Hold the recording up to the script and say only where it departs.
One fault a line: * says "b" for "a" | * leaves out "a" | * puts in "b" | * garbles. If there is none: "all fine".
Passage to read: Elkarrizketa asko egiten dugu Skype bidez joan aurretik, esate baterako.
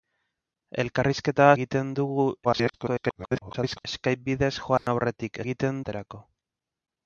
* leaves out "asko"
* garbles
* says "egiten" for "esate"